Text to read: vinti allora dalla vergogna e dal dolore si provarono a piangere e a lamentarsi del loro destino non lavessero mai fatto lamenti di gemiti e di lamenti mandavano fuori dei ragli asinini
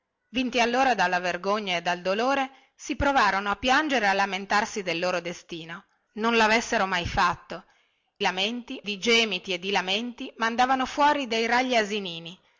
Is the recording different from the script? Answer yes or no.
no